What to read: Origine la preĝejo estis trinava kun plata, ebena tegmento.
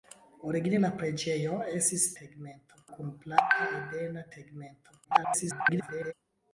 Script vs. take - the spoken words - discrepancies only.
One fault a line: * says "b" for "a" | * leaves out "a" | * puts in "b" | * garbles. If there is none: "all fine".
* says "tegmento" for "trinava"
* garbles